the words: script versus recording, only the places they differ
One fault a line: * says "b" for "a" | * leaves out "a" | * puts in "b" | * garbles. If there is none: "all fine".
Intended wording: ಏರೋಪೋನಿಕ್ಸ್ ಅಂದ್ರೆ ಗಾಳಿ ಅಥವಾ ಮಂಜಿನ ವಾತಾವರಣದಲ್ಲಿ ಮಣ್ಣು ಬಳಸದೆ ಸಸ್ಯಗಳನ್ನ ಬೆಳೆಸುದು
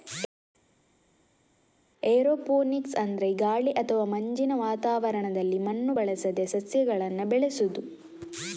all fine